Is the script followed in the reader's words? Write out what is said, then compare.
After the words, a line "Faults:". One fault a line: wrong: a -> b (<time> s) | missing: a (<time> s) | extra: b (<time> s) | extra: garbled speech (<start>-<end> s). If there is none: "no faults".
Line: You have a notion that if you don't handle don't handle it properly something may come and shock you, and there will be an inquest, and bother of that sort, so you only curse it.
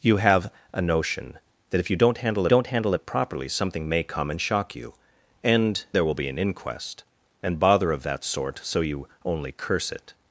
You have a notion that if you don't handle don't handle it properly something may come and shock you, and there will be an inquest, and bother of that sort, so you only curse it.
Faults:
no faults